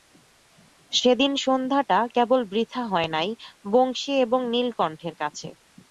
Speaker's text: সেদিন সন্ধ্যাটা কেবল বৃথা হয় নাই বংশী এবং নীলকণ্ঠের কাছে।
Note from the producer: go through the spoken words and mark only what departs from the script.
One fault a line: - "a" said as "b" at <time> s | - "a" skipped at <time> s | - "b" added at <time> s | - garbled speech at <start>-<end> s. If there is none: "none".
none